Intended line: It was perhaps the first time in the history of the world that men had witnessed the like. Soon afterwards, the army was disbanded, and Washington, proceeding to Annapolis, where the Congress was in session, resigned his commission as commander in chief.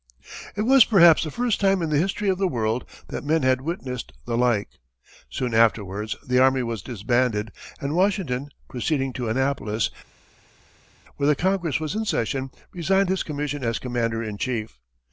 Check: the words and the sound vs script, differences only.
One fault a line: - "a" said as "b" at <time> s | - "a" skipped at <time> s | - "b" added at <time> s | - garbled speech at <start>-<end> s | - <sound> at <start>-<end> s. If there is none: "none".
none